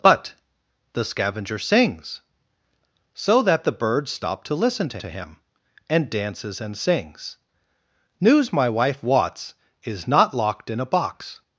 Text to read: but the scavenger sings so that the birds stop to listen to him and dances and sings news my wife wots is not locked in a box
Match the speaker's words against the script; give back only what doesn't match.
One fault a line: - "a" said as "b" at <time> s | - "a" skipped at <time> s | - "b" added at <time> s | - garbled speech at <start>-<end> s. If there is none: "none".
- "to" added at 5.0 s